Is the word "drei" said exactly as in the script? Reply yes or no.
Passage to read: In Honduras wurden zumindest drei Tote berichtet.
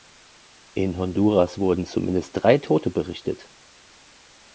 yes